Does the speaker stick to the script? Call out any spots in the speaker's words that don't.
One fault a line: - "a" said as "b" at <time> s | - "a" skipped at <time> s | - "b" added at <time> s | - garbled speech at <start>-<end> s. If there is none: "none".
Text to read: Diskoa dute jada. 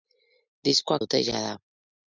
none